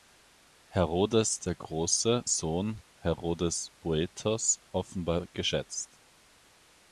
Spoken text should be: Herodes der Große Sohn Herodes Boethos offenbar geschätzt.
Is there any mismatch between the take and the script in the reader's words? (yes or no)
no